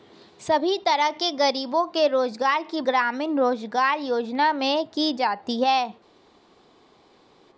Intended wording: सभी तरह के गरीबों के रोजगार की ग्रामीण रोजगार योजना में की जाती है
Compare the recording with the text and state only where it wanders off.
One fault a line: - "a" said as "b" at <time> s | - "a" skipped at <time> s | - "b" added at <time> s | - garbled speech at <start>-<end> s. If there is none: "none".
none